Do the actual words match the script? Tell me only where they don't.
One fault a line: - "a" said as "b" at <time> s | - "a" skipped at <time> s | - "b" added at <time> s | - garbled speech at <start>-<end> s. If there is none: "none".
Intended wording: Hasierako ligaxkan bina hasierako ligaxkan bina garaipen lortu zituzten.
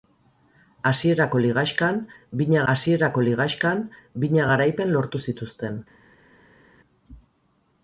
none